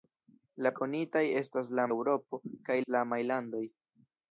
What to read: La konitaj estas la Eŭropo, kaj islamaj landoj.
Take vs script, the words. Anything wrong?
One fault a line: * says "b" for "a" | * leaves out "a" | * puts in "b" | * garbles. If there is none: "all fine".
all fine